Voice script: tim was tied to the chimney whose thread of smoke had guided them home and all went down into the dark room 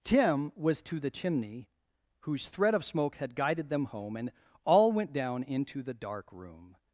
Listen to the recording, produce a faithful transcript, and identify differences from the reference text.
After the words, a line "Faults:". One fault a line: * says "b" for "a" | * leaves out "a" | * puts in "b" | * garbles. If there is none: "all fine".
tim was to the chimney whose thread of smoke had guided them home and all went down into the dark room
Faults:
* leaves out "tied"